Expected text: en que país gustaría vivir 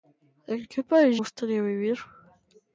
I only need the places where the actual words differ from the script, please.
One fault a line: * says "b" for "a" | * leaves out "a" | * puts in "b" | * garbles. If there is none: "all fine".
all fine